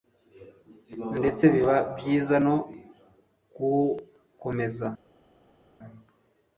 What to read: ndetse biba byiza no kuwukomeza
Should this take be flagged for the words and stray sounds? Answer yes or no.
no